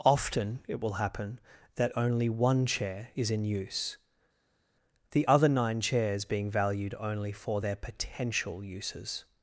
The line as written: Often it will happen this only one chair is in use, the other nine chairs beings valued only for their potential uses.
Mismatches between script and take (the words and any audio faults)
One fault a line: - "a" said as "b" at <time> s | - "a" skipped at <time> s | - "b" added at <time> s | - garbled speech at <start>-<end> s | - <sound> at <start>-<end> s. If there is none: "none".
- "this" said as "that" at 1.8 s
- "beings" said as "being" at 6.2 s